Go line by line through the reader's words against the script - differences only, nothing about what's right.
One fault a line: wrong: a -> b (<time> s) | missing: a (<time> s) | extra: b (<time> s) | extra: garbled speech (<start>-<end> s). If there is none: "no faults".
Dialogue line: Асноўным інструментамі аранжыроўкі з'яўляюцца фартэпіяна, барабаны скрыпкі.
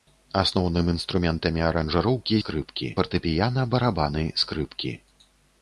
wrong: з'яўляюцца -> скрыпкі (2.4 s)